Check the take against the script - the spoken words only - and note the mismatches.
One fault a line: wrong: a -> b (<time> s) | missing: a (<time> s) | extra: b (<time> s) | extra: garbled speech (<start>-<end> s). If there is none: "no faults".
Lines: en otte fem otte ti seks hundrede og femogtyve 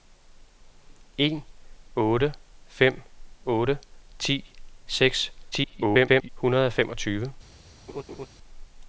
extra: garbled speech (5.5-6.3 s)